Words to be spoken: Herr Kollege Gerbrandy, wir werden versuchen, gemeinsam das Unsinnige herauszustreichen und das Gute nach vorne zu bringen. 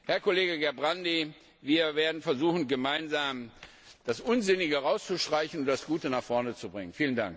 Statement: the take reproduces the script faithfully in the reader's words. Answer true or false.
true